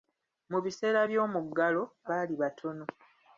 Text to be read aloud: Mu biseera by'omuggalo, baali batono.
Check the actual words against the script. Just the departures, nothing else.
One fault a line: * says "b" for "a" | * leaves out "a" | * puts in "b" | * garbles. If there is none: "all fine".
all fine